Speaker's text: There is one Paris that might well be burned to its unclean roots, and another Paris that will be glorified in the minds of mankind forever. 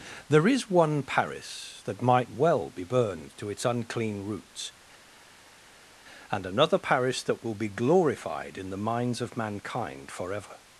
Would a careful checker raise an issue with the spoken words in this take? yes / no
no